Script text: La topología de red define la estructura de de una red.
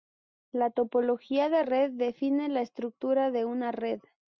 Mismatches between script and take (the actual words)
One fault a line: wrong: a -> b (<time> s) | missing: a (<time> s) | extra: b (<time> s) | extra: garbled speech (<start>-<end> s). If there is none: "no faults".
missing: de (3.4 s)